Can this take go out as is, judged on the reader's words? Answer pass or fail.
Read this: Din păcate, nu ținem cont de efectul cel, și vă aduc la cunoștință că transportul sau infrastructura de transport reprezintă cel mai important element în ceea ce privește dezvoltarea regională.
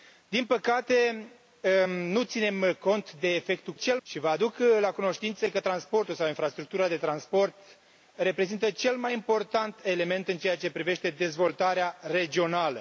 pass